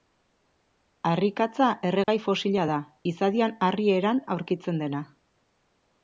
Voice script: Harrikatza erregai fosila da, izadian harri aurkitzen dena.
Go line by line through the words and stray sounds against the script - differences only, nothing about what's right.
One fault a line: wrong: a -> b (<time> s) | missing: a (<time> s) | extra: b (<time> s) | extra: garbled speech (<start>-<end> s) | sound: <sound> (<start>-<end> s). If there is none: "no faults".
sound: dropout (2.0-2.1 s)
extra: eran (4.0 s)